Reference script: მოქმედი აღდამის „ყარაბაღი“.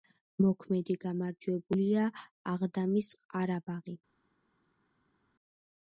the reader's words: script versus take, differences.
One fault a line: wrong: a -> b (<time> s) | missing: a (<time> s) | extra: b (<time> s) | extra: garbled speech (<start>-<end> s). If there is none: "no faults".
extra: გამარჯვებულია (1.0 s)